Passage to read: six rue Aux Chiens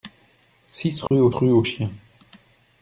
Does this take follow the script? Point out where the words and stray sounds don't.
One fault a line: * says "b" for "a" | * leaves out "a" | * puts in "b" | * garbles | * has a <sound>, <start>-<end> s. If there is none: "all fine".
* has a dropout, 1.1-1.1 s
* puts in "rue Aux"